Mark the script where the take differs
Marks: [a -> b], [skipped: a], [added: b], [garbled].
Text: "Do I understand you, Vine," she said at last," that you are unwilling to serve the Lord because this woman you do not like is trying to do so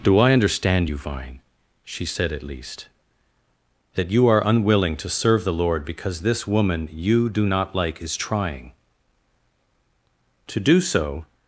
"Do I understand you, Vine," she said at [last," -> least] that you are unwilling to serve the Lord because this woman you do not like is trying to do so